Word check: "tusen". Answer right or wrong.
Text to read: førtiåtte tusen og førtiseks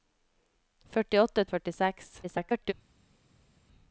wrong